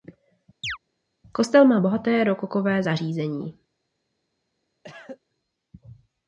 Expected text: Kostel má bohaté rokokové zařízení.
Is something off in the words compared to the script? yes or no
no